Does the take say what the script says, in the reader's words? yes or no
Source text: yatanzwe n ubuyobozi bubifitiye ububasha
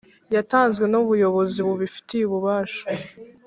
yes